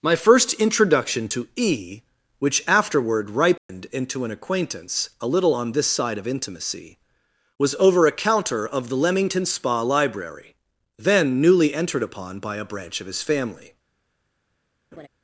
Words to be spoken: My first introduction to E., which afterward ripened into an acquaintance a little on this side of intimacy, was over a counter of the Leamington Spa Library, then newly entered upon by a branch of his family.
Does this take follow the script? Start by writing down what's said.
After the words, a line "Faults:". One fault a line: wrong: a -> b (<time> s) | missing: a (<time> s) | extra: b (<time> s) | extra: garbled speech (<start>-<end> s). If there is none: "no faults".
My first introduction to E., which afterward ripened into an acquaintance a little on this side of intimacy, was over a counter of the Leamington Spa Library, then newly entered upon by a branch of his family.
Faults:
no faults